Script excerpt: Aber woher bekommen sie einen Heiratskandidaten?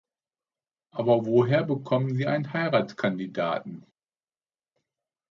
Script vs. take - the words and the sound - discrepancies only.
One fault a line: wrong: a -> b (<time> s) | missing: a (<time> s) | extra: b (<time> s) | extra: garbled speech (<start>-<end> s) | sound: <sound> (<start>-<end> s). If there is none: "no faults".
no faults